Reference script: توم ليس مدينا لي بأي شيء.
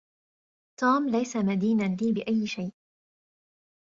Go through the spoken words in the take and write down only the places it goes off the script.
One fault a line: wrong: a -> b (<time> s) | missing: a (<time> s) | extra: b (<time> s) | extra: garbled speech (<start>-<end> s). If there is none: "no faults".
no faults